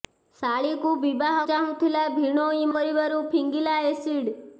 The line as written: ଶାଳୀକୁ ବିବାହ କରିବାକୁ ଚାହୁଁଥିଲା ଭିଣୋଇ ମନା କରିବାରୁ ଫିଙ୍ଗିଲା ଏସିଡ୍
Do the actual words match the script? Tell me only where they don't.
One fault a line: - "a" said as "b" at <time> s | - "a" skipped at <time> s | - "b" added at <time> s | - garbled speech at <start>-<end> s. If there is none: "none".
- "କରିବାକୁ" skipped at 1.4 s
- "ମନା" skipped at 2.7 s